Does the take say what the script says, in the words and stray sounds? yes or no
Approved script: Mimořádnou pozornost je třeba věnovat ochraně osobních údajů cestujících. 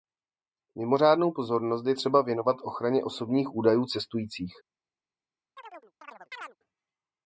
no